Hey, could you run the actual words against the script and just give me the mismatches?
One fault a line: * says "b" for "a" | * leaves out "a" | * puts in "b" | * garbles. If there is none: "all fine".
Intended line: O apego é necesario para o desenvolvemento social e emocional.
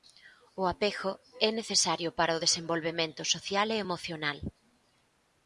all fine